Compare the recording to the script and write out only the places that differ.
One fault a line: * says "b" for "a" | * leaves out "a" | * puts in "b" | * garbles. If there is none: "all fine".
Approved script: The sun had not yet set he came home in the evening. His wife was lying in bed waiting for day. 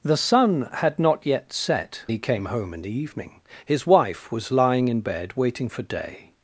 all fine